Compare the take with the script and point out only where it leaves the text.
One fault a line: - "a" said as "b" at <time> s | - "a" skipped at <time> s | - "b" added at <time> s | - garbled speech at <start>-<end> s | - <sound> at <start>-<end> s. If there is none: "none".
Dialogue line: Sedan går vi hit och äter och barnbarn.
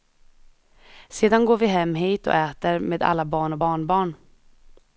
- "hem" added at 1.7 s
- "med alla barn" added at 2.8 s